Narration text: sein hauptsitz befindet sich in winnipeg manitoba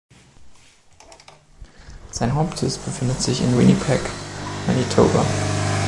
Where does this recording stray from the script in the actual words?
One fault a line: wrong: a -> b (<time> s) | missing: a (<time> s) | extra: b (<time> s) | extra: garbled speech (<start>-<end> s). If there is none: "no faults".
no faults